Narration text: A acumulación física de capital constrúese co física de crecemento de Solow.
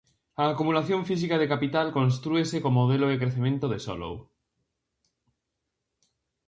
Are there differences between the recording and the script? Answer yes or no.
yes